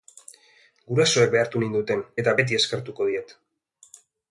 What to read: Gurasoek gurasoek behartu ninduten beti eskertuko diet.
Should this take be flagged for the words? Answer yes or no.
yes